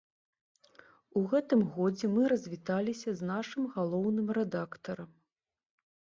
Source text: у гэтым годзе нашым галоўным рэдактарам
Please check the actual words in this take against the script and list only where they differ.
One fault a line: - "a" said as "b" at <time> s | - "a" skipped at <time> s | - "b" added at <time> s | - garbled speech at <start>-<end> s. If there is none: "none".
- "мы развіталіся з" added at 2.1 s